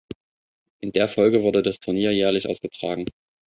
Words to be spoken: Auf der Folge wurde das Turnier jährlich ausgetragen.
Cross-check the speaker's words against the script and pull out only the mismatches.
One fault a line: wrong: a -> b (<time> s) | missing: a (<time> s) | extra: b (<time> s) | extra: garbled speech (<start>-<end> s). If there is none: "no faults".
wrong: Auf -> In (0.8 s)